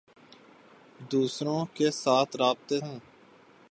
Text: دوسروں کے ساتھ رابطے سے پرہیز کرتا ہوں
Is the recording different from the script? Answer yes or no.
yes